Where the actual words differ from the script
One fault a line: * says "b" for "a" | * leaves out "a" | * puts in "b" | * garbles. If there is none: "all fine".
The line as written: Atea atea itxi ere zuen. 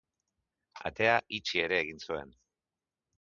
* leaves out "atea"
* puts in "egin"